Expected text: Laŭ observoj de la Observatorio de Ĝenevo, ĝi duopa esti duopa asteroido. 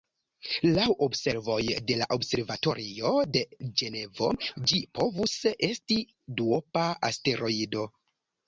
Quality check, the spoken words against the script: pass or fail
fail